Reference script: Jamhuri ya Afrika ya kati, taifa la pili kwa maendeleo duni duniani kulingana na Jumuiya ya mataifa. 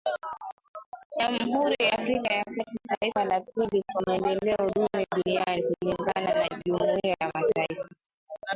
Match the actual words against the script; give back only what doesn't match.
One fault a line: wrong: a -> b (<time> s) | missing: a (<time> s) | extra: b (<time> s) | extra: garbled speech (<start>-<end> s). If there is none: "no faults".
no faults